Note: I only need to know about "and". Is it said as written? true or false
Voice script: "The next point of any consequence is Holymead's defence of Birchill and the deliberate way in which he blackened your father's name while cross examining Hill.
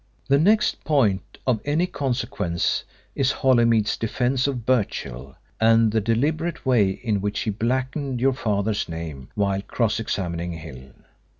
true